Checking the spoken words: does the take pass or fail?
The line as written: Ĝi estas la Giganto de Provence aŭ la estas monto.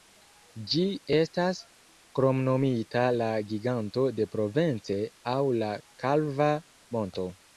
fail